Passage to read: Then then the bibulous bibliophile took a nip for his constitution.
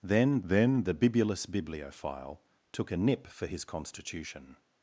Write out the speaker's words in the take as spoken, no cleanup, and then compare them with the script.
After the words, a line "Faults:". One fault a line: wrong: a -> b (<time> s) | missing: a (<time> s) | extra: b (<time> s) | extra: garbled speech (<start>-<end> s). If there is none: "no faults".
Then then the bibulous bibliophile took a nip for his constitution.
Faults:
no faults